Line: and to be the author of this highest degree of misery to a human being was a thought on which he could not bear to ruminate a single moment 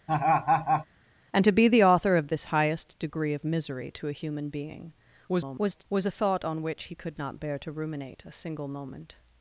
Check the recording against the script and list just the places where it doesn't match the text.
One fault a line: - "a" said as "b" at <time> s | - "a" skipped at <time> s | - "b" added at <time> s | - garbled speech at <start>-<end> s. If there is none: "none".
- garbled speech at 5.3-5.8 s